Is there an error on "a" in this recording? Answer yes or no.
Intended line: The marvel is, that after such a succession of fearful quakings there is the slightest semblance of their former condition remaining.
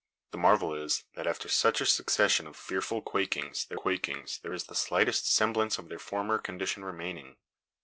no